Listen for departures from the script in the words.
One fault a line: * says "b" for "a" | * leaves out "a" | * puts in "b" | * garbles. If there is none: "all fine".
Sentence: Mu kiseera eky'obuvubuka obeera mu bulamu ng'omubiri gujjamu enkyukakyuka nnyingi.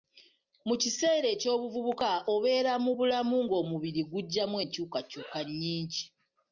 all fine